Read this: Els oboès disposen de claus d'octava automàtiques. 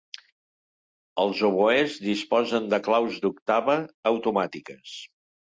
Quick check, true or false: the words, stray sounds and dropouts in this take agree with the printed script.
true